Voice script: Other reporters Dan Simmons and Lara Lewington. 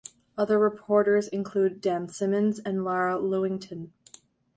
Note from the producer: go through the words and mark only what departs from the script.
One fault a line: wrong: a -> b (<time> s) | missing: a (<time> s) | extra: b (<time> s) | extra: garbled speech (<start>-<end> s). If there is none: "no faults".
extra: include (1.3 s)